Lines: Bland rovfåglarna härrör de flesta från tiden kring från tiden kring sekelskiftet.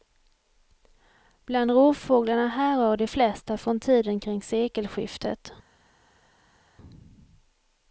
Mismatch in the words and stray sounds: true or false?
true